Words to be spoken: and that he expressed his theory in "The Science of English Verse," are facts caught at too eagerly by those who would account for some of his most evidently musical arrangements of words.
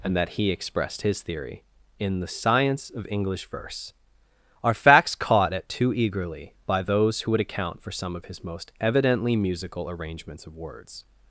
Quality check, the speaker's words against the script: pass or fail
pass